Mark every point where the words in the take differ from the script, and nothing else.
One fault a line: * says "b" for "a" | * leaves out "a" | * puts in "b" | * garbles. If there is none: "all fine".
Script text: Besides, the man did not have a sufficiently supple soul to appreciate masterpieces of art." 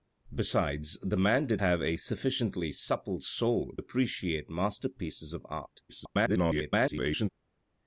* leaves out "not"
* leaves out "to"
* garbles